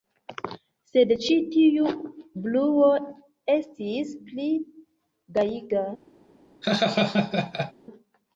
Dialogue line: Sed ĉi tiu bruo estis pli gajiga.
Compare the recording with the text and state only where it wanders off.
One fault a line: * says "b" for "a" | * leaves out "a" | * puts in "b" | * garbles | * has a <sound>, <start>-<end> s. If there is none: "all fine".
* has a laugh, 6.6-7.7 s